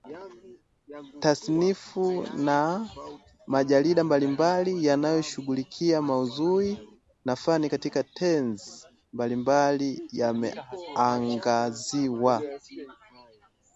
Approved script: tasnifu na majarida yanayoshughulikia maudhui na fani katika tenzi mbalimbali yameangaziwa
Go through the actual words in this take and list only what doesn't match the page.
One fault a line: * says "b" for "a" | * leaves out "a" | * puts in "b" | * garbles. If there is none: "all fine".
* puts in "mbalimbali"